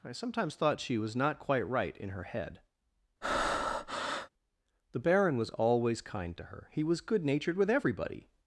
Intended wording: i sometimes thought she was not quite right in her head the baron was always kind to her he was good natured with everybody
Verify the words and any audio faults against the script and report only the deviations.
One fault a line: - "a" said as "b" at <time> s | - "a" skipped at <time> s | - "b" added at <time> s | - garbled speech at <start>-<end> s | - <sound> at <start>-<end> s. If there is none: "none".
- breath at 3.2-4.3 s